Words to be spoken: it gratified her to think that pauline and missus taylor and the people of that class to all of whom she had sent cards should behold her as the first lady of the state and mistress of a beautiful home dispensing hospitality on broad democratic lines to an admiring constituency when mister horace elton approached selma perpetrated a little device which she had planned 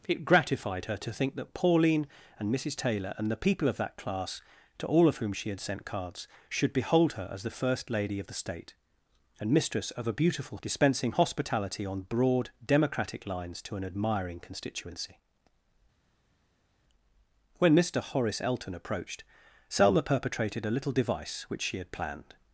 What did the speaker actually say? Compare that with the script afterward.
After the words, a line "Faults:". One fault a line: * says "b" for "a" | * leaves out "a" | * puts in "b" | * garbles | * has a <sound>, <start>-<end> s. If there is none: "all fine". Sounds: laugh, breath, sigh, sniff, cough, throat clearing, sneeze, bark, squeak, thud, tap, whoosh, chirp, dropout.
it gratified her to think that pauline and missus taylor and the people of that class to all of whom she had sent cards should behold her as the first lady of the state and mistress of a beautiful dispensing hospitality on broad democratic lines to an admiring constituency when mister horace elton approached selma perpetrated a little device which she had planned
Faults:
* leaves out "home"